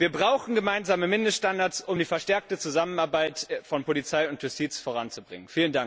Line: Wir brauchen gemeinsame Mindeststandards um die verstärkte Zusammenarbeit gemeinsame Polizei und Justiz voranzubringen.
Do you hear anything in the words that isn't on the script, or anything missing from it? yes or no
yes